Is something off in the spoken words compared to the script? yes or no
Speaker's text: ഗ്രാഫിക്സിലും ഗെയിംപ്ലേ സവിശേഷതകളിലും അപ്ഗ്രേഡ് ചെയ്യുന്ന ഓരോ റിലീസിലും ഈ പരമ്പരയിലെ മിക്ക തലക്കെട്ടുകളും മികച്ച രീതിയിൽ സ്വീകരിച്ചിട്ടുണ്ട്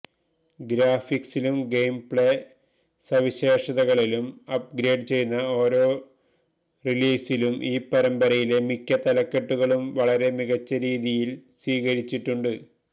yes